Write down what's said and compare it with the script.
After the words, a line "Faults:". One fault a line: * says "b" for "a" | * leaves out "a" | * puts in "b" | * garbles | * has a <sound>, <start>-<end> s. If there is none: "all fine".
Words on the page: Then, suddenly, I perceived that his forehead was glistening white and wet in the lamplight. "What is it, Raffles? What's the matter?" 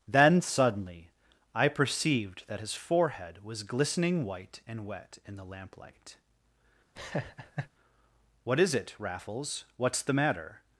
Then, suddenly, I perceived that his forehead was glistening white and wet in the lamplight. "What is it, Raffles? What's the matter?"
Faults:
* has a laugh, 6.9-7.7 s